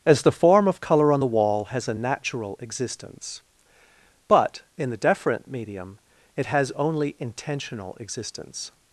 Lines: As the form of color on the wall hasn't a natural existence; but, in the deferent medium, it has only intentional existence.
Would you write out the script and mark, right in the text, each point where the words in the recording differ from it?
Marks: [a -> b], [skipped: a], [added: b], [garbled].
As the form of color on the wall [hasn't -> has] a natural existence; but, in the deferent medium, it has only intentional existence.